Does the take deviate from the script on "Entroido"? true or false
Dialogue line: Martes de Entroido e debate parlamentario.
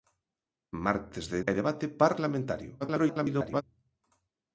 true